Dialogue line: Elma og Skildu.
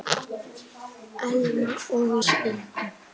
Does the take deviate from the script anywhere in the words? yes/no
no